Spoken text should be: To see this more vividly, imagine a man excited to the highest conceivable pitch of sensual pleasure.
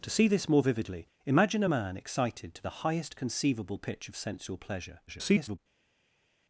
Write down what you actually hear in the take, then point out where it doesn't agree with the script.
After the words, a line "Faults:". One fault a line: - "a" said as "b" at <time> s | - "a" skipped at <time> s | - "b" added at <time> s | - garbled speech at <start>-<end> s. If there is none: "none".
To see this more vividly, imagine a man excited to the highest conceivable pitch of sensual pleasure. [garbled]
Faults:
- garbled speech at 5.1-5.6 s